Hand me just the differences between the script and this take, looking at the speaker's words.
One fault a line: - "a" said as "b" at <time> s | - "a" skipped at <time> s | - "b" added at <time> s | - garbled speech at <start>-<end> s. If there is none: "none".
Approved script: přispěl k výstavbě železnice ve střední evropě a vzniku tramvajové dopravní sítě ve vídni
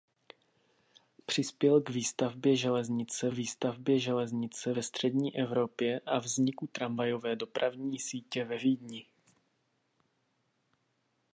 - "výstavbě železnice" added at 3.3 s